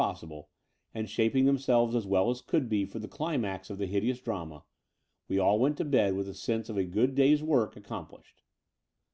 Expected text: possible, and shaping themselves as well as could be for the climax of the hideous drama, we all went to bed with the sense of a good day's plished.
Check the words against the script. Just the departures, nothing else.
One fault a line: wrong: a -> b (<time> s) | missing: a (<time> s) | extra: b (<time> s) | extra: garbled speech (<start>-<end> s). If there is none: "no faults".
extra: work accom (7.4 s)